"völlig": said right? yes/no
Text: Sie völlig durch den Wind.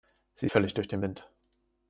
yes